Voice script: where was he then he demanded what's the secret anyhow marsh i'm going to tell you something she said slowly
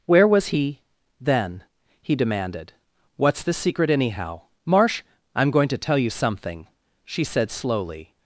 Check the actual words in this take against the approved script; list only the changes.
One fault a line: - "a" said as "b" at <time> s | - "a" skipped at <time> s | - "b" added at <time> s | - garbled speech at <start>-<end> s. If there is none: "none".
none